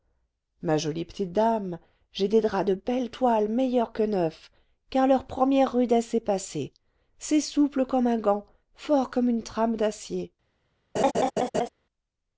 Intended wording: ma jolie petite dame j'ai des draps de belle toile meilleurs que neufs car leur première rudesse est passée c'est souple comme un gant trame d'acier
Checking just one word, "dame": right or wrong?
right